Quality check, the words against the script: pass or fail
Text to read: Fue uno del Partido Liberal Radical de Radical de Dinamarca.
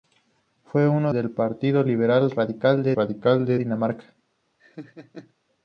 pass